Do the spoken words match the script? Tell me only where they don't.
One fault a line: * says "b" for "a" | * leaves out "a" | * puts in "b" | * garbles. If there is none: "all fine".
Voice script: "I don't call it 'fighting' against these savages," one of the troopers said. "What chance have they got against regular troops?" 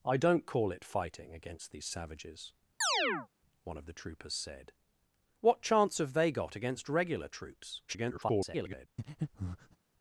* garbles